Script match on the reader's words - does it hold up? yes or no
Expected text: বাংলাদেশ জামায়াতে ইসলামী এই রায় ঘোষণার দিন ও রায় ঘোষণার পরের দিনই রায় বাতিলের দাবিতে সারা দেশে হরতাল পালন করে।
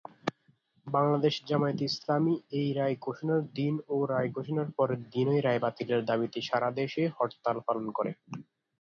yes